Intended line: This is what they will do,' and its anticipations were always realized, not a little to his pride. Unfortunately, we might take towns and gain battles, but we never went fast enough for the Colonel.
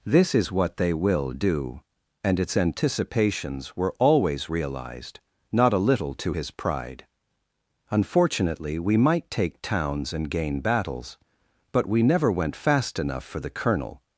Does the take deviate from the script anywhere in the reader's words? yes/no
no